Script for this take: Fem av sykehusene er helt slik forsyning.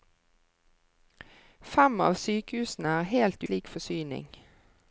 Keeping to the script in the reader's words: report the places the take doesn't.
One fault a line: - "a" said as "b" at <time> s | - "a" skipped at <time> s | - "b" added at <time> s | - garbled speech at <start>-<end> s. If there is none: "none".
none